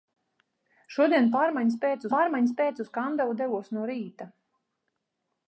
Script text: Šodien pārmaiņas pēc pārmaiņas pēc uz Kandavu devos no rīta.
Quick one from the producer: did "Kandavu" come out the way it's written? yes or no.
yes